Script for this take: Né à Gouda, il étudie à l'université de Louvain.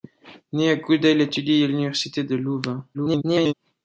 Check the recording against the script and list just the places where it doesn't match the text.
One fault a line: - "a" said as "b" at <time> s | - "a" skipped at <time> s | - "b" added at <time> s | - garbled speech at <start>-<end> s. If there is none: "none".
- garbled speech at 2.9-3.5 s